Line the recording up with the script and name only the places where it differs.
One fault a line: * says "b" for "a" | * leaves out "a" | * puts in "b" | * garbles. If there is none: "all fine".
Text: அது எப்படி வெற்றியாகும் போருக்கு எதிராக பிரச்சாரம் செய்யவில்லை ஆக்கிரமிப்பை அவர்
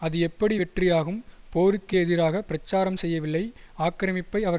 all fine